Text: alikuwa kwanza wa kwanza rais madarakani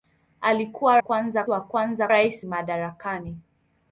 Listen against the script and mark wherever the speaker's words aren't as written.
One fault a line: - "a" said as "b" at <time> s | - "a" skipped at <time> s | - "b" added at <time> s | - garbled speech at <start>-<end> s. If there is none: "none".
none